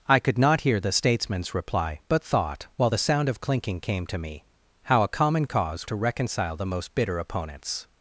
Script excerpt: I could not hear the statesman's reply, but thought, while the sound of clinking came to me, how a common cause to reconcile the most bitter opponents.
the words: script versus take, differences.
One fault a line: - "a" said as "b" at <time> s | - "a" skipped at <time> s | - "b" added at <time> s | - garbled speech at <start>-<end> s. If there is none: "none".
none